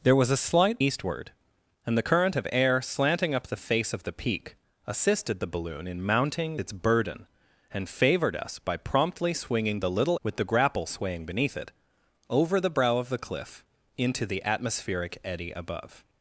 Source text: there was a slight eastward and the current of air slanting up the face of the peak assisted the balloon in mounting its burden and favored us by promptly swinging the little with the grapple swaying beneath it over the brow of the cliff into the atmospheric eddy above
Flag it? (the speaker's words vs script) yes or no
no